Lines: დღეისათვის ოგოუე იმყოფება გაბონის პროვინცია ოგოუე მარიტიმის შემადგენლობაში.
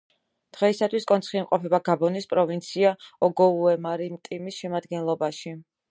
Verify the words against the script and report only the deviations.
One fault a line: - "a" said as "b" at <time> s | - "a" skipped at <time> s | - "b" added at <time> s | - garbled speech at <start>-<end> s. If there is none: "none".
- "ოგოუე" said as "კონცხი" at 1.1 s